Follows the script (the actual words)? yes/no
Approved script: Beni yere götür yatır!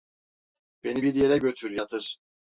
no